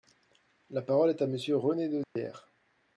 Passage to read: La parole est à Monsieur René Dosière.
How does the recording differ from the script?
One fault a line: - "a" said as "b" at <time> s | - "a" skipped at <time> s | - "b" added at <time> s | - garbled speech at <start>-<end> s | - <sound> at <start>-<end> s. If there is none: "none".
- dropout at 2.0-2.2 s